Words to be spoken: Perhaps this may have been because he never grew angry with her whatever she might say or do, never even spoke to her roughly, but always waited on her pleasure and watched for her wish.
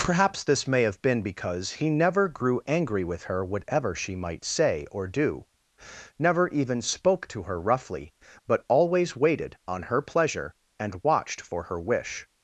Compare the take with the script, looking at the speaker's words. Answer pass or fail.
pass